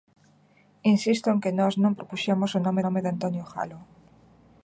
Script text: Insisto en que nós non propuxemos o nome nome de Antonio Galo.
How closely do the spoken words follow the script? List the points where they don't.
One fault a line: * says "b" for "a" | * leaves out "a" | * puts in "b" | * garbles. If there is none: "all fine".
all fine